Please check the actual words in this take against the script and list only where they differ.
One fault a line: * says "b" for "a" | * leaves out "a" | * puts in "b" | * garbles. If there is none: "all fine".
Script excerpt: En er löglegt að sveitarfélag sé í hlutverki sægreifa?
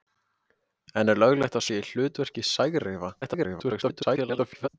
* leaves out "sveitarfélag"
* garbles